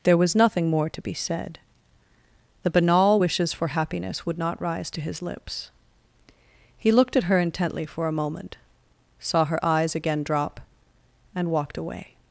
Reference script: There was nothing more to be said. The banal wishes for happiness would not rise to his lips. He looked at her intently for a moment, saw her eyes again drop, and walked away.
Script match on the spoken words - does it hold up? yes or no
yes